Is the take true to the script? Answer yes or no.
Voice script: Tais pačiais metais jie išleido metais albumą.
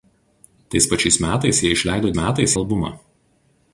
yes